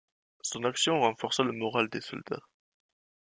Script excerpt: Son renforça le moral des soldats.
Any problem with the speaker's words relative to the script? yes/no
yes